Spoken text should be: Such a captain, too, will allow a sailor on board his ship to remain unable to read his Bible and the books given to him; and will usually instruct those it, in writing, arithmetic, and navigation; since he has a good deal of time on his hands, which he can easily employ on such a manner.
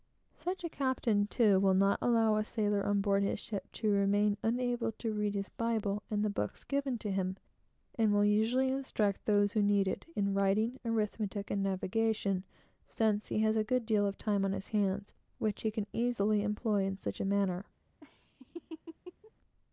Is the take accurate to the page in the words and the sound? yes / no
no